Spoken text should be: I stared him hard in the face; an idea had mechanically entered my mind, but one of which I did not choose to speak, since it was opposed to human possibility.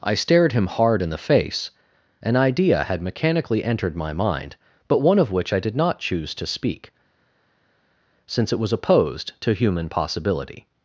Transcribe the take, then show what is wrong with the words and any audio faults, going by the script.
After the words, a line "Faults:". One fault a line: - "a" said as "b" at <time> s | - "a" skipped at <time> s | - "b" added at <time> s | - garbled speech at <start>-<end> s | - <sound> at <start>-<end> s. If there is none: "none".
I stared him hard in the face; an idea had mechanically entered my mind, but one of which I did not choose to speak, since it was opposed to human possibility.
Faults:
none